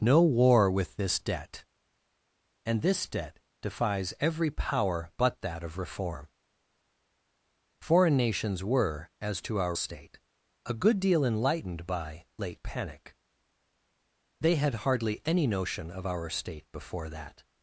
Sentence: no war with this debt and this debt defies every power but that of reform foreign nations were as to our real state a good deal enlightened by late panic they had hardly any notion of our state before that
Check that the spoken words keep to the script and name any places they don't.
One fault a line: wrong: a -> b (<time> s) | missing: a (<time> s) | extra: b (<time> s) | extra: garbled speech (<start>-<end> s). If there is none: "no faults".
missing: real (9.8 s)